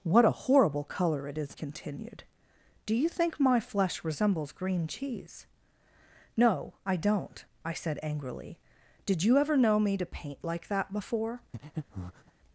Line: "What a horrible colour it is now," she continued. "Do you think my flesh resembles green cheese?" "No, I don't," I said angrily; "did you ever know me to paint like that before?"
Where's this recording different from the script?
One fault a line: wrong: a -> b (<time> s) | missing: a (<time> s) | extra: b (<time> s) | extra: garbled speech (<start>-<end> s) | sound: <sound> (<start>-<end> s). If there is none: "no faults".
missing: now she (1.6 s)
sound: breath (11.5-12.3 s)